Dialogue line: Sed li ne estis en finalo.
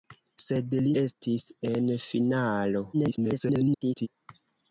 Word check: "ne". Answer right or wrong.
wrong